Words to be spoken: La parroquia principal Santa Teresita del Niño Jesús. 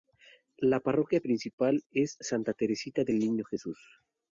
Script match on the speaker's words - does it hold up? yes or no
no